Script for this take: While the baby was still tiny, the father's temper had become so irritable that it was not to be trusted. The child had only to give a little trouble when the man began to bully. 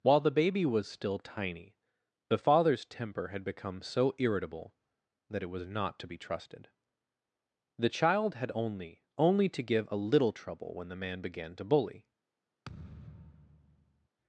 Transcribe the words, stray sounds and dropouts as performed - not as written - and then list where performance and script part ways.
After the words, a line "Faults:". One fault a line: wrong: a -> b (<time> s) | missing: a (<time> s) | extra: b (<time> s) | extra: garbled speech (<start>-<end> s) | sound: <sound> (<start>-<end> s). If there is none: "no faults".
While the baby was still tiny, the father's temper had become so irritable that it was not to be trusted. The child had only only to give a little trouble when the man began to bully.
Faults:
extra: only (9.2 s)
sound: thud (12.6-14.1 s)